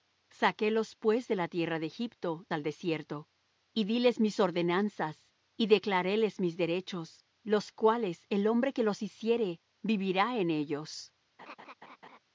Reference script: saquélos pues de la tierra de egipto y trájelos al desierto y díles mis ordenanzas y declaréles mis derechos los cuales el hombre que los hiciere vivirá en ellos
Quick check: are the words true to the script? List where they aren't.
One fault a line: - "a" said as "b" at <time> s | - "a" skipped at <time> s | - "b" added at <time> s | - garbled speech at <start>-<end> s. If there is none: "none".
- "y trájelos" skipped at 2.5 s